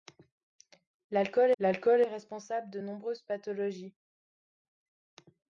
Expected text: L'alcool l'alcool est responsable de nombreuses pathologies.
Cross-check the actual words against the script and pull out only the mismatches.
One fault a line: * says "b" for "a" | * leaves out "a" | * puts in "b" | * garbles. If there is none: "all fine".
all fine